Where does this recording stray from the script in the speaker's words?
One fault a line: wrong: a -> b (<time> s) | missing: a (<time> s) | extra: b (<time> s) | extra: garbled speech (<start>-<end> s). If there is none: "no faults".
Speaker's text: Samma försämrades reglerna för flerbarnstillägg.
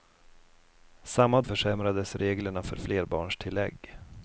no faults